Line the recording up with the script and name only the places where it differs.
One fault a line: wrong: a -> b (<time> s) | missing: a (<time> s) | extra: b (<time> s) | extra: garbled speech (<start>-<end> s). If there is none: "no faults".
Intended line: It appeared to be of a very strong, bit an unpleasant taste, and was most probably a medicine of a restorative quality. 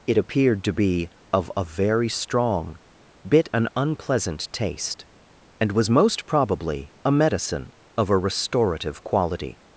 no faults